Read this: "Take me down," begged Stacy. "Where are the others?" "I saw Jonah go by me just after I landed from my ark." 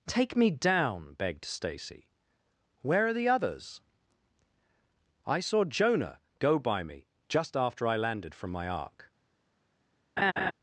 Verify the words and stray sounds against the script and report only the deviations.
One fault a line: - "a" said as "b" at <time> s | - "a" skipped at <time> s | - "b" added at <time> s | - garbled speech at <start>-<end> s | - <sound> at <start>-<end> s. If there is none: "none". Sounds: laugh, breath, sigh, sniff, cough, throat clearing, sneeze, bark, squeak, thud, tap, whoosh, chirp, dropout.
- laugh at 10.2-10.5 s